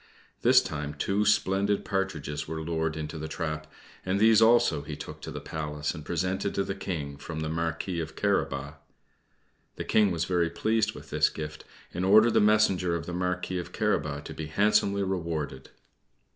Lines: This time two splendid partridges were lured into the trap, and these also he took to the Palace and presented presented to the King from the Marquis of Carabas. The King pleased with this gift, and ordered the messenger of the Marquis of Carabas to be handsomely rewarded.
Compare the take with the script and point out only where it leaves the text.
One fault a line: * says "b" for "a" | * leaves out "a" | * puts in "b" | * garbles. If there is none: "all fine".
* leaves out "presented"
* puts in "was very"